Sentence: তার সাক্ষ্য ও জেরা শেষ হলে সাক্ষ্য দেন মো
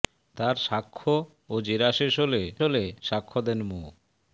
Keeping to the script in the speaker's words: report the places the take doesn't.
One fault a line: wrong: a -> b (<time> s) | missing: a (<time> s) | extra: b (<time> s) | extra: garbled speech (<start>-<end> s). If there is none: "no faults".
extra: হলে (2.6 s)